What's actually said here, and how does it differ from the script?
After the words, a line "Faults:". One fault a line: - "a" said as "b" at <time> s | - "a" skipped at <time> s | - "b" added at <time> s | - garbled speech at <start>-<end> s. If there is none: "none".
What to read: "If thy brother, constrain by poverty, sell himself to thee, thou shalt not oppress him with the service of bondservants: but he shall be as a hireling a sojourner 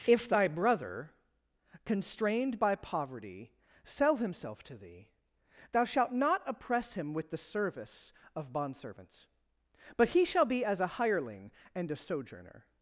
"If thy brother, constrained by poverty, sell himself to thee, thou shalt not oppress him with the service of bondservants: but he shall be as a hireling and a sojourner
Faults:
- "constrain" said as "constrained" at 1.9 s
- "and" added at 11.7 s